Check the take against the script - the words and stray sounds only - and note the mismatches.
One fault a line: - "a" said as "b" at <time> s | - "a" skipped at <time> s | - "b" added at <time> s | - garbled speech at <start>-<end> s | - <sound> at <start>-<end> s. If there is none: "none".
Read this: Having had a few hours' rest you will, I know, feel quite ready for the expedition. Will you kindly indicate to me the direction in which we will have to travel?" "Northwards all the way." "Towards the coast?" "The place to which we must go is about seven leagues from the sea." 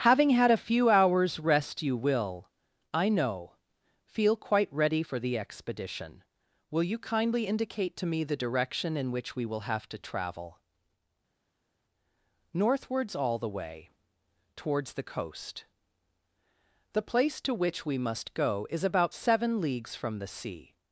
none